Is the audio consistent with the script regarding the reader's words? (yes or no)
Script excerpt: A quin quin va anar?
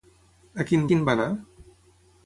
yes